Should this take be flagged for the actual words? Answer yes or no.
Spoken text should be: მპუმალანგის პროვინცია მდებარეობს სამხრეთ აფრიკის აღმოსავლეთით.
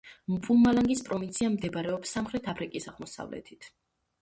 no